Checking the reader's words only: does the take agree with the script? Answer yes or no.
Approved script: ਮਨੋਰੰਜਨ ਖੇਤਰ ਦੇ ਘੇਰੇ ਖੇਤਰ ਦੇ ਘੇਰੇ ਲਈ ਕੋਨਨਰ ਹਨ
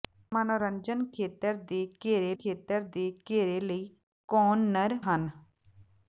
yes